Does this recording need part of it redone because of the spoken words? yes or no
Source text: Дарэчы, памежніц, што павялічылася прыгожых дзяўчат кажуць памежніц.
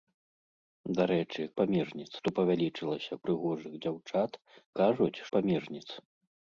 no